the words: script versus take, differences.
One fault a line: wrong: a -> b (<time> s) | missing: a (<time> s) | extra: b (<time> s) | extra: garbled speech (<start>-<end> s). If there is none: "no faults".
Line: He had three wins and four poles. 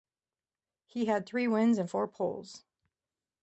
no faults